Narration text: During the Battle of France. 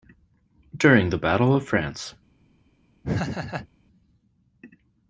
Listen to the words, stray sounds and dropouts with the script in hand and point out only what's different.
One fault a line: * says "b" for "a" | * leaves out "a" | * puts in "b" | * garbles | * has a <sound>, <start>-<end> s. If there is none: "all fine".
* has a laugh, 3.0-3.7 s